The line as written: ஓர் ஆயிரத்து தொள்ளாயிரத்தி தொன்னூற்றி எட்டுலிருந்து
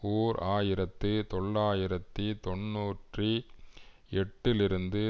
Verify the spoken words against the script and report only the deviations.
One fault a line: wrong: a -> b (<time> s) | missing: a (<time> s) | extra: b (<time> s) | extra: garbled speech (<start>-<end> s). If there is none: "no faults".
no faults